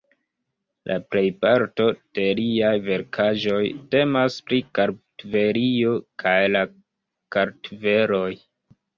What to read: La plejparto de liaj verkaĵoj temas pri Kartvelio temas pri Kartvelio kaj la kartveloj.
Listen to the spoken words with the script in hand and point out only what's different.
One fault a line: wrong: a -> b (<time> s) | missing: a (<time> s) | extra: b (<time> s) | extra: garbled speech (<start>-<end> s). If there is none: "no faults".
missing: temas pri Kartvelio (6.0 s)